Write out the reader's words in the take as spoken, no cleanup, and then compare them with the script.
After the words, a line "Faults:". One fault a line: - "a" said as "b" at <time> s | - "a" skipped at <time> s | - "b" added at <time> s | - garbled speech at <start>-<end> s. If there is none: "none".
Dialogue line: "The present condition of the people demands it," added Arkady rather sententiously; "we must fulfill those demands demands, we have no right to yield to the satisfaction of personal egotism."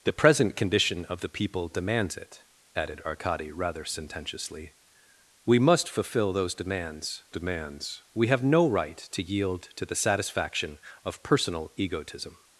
"The present condition of the people demands it," added Arkady rather sententiously; "we must fulfill those demands demands, we have no right to yield to the satisfaction of personal egotism."
Faults:
none